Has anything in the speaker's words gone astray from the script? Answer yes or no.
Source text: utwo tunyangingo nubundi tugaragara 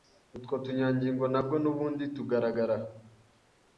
yes